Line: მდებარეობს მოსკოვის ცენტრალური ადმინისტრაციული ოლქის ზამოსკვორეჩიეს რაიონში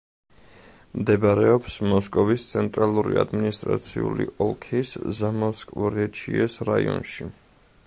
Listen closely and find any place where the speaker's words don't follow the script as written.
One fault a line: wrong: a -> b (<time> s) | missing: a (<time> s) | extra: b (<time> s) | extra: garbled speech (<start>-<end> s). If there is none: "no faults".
no faults